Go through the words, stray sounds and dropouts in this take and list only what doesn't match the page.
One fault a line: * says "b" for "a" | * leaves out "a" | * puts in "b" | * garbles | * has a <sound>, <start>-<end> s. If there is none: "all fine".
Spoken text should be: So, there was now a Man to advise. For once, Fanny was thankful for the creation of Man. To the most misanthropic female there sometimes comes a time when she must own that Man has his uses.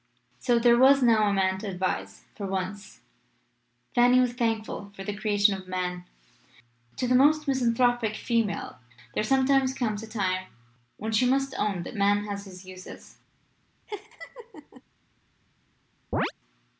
* has a laugh, 13.9-14.8 s
* has a chirp, 16.1-16.3 s